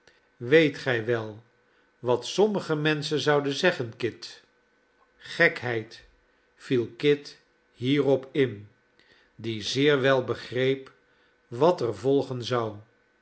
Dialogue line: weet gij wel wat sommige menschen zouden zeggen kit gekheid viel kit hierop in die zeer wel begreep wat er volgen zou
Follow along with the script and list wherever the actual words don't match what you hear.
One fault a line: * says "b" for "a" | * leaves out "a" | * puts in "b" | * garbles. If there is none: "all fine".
all fine